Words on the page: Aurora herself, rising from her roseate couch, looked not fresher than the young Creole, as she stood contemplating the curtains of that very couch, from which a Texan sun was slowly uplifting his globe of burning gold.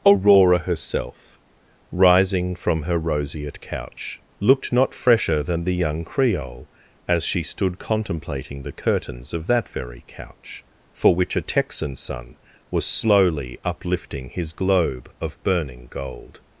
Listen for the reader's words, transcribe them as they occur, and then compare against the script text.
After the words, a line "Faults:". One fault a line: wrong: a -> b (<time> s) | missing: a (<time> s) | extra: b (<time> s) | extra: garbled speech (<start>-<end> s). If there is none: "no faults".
Aurora herself, rising from her roseate couch, looked not fresher than the young Creole, as she stood contemplating the curtains of that very couch, for which a Texan sun was slowly uplifting his globe of burning gold.
Faults:
wrong: from -> for (10.9 s)